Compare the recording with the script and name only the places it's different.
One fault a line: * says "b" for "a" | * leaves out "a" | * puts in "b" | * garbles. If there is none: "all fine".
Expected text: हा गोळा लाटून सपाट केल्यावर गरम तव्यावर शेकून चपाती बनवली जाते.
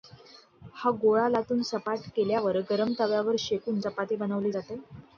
all fine